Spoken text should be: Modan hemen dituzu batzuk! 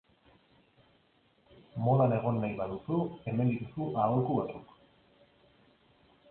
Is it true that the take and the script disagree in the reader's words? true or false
true